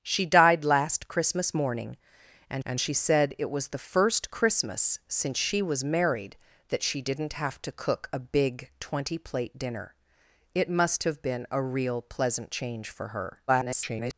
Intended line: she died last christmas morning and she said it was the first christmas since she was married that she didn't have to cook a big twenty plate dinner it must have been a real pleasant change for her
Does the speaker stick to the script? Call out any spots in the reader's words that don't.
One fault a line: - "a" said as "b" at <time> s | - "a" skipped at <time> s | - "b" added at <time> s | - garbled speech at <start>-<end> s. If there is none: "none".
- "and" added at 2.6 s
- garbled speech at 13.5-14.1 s